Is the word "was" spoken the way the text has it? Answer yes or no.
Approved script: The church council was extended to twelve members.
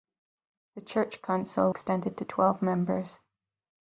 no